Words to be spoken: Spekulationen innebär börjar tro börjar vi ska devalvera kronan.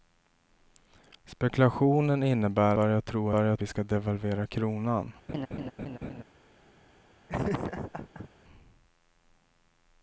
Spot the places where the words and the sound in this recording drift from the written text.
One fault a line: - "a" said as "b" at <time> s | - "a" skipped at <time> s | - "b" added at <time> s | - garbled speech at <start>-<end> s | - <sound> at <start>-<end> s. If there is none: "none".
- laugh at 5.3-6.2 s
- laugh at 7.3-8.3 s